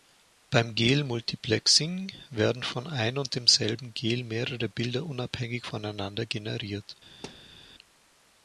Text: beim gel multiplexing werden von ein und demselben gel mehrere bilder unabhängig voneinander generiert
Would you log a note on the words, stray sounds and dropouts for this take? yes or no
yes